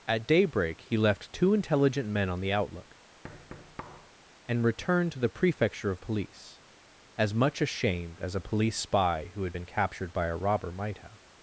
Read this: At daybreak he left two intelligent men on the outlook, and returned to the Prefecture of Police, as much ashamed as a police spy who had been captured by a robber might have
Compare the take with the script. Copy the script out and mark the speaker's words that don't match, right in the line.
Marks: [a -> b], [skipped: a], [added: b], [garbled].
At daybreak he left two intelligent men on the outlook, and returned to the Prefecture of Police, as much ashamed as a police spy who had been captured by a robber might have